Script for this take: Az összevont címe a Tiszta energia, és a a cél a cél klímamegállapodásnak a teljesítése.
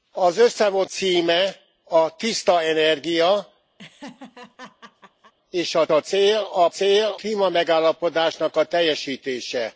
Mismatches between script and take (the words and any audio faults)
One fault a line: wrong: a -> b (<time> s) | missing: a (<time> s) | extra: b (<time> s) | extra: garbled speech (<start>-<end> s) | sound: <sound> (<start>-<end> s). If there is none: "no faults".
sound: laugh (3.8-5.3 s)